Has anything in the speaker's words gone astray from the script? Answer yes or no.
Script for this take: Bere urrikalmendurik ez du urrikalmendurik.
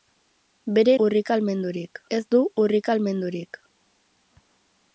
no